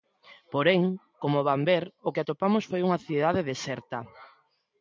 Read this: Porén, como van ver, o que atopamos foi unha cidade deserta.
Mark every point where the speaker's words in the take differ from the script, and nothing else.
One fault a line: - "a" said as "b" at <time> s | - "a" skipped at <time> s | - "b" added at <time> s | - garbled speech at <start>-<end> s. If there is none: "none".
none